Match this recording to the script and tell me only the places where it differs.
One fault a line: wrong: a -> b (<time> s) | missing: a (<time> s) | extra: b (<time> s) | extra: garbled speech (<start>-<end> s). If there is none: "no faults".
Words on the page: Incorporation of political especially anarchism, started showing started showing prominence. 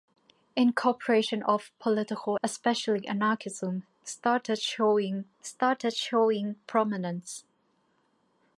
no faults